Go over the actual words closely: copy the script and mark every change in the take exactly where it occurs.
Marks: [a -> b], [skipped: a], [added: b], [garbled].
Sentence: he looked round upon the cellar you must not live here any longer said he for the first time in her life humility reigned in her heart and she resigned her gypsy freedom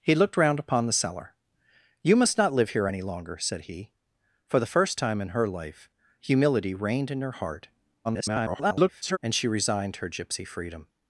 he looked round upon the cellar you must not live here any longer said he for the first time in her life humility reigned in her heart [garbled] and she resigned her gypsy freedom